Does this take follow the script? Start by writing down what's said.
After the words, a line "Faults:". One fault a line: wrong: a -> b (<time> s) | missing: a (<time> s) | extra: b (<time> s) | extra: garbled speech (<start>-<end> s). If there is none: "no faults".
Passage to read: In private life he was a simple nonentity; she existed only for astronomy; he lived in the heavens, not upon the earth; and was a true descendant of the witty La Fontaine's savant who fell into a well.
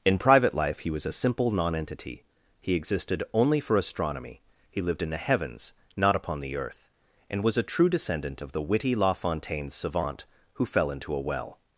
In private life he was a simple nonentity; he existed only for astronomy; he lived in the heavens, not upon the earth; and was a true descendant of the witty La Fontaine's savant who fell into a well.
Faults:
wrong: she -> he (2.6 s)